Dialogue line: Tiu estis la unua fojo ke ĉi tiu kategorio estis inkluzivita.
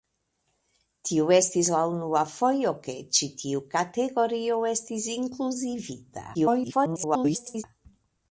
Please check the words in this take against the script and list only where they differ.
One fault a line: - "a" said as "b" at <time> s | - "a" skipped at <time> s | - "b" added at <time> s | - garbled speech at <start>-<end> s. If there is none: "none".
- garbled speech at 6.3-7.6 s